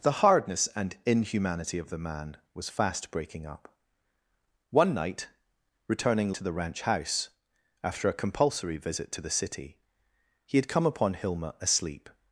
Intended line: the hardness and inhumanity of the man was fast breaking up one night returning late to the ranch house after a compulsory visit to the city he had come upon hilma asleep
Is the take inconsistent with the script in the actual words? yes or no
yes